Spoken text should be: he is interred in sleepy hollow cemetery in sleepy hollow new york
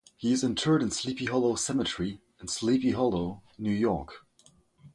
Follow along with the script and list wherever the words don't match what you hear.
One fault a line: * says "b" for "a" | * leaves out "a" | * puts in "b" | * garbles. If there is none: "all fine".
all fine